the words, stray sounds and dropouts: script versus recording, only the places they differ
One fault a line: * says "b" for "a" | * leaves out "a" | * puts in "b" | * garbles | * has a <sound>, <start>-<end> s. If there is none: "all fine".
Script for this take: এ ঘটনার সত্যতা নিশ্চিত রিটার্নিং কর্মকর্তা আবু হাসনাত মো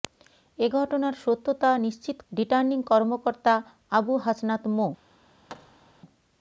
* has a thud, 5.5-6.0 s